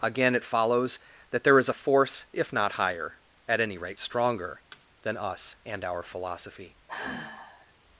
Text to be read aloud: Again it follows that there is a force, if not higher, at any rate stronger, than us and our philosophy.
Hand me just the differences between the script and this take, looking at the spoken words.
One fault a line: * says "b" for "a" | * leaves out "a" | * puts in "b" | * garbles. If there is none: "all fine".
all fine